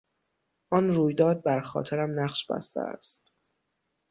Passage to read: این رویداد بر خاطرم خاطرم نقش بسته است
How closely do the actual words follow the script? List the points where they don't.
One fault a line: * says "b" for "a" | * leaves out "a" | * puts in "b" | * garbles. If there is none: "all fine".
* says "آن" for "این"
* leaves out "خاطرم"